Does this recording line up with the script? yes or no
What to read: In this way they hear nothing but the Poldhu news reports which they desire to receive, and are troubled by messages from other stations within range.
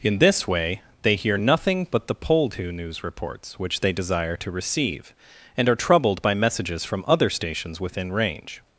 yes